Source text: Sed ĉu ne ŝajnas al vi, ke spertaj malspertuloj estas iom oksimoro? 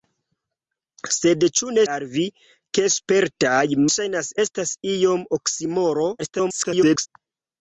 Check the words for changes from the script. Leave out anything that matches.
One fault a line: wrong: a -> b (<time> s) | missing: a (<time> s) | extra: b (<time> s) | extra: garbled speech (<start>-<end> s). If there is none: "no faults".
missing: ŝajnas (1.8 s)
wrong: malspertuloj -> ŝajnas (3.9 s)
extra: garbled speech (6.2-7.1 s)